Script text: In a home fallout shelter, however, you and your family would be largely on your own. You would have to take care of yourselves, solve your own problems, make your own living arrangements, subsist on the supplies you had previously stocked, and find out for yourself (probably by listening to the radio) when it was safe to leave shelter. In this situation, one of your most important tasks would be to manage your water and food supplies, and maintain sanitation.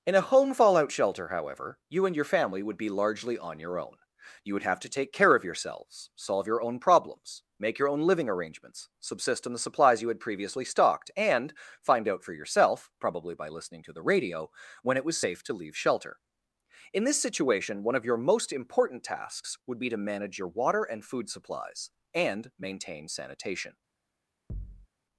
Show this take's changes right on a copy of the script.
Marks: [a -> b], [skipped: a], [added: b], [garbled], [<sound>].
In a home fallout shelter, however, you and your family would be largely on your own. You would have to take care of yourselves, solve your own problems, make your own living arrangements, subsist on the supplies you had previously stocked, and find out for yourself (probably by listening to the radio) when it was safe to leave shelter. In this situation, one of your most important tasks would be to manage your water and food supplies, and maintain sanitation. [thud]